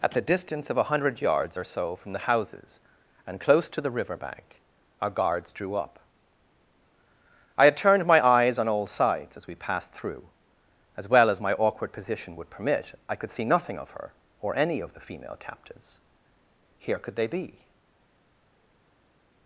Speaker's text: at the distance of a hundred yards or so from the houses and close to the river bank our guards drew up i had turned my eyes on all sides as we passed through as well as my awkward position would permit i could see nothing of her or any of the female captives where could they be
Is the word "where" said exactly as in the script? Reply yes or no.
no